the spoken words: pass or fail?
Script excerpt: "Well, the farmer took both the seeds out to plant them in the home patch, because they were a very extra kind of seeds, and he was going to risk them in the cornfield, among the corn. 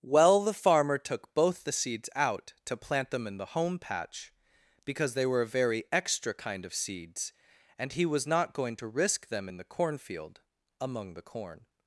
fail